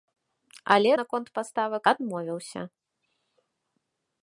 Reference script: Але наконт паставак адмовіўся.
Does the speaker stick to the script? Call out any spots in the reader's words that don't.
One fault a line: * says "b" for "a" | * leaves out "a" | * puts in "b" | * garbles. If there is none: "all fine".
all fine